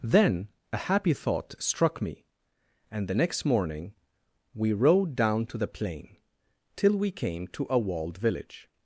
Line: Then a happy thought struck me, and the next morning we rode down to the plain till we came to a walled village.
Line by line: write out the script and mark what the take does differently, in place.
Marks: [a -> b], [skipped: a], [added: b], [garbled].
Then a happy thought struck me, and the next morning we rode down to the plain till we came to a walled village.